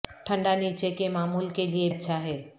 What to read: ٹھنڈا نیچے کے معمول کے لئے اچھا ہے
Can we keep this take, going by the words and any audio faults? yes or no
yes